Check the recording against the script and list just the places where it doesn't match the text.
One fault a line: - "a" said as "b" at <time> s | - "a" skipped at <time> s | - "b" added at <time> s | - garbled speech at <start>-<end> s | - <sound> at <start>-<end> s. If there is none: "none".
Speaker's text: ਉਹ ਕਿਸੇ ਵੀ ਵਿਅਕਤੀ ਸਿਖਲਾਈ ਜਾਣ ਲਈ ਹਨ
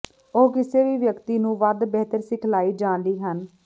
- "ਨੂੰ ਵੱਧ ਬਿਹਤਰ" added at 1.4 s